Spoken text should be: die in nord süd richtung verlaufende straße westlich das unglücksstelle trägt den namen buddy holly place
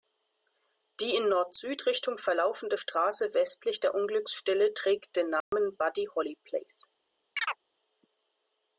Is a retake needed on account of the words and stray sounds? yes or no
yes